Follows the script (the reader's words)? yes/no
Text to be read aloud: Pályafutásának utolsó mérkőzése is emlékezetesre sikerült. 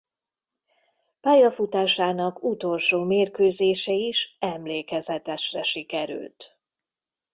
yes